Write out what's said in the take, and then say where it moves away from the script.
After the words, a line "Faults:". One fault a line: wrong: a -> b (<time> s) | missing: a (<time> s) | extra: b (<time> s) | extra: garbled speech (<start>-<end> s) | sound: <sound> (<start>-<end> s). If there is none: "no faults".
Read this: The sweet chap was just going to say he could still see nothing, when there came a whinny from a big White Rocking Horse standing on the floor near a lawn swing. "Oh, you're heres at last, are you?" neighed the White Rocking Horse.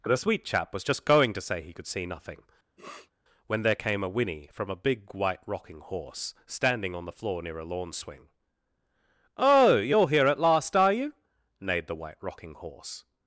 The sweet chap was just going to say he could see nothing, when there came a whinny from a big White Rocking Horse standing on the floor near a lawn swing. "Oh, you're here at last, are you?" neighed the White Rocking Horse.
Faults:
missing: still (1.9 s)
sound: sniff (2.8-3.1 s)
wrong: heres -> here (10.1 s)